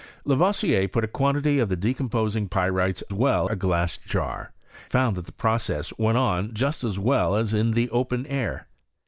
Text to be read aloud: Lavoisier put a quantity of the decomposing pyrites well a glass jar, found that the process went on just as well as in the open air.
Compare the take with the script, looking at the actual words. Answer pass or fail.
pass